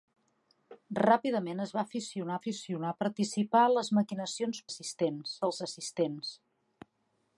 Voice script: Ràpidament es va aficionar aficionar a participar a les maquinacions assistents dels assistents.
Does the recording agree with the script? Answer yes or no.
yes